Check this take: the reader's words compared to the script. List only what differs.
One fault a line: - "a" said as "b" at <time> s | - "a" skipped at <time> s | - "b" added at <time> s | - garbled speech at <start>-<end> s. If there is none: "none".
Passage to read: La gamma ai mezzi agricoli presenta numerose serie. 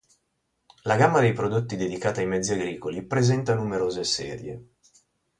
- "dei prodotti dedicata" added at 1.2 s